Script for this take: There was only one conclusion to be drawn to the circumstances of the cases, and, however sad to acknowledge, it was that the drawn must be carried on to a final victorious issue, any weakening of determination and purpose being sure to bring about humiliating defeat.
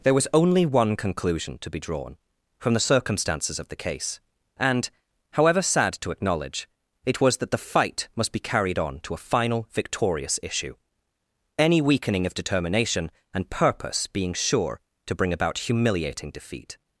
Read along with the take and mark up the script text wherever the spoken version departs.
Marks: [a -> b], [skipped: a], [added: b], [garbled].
There was only one conclusion to be drawn [to -> from] the circumstances of the [cases, -> case] and, however sad to acknowledge, it was that the [drawn -> fight] must be carried on to a final victorious issue, any weakening of determination and purpose being sure to bring about humiliating defeat.